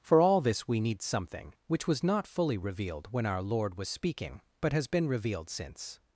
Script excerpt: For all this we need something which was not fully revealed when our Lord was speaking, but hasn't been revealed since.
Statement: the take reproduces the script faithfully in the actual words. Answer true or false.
false